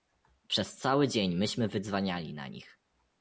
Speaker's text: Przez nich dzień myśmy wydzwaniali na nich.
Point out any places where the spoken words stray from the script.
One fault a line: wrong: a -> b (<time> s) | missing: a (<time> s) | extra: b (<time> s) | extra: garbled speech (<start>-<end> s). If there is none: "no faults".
wrong: nich -> cały (0.8 s)